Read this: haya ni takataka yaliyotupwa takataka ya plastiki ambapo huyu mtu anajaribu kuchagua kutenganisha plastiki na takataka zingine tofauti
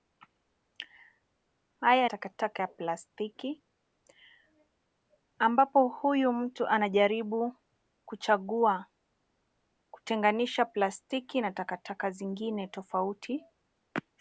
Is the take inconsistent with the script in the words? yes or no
yes